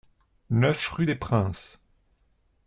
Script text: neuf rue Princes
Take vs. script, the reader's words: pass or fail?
fail